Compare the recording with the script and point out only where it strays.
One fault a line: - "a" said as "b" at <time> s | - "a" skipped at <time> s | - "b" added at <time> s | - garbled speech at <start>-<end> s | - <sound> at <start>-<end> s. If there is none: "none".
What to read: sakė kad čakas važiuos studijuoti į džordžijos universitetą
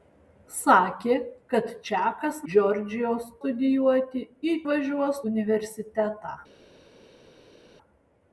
- "važiuos" said as "džordžijos" at 2.5 s
- "džordžijos" said as "važiuos" at 4.7 s